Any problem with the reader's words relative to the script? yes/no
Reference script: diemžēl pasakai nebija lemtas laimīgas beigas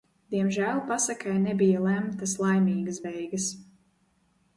no